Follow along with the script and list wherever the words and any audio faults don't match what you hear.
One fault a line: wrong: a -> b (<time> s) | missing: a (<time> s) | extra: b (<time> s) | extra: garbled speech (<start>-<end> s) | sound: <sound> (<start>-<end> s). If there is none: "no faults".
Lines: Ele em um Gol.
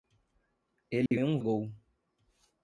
sound: dropout (1.1-1.1 s)